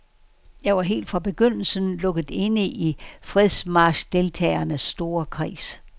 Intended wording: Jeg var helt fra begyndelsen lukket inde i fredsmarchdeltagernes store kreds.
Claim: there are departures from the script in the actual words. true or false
false